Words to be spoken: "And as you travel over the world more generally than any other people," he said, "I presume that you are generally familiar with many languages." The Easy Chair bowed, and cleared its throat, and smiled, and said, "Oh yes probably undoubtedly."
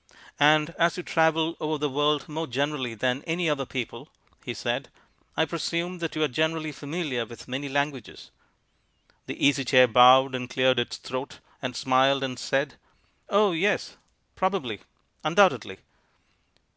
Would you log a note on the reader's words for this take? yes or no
no